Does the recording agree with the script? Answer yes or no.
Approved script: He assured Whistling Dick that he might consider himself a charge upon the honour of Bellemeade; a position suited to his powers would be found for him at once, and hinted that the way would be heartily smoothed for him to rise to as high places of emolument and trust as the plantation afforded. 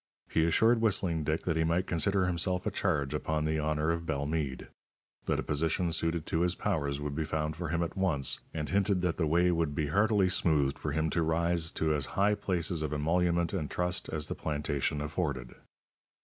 no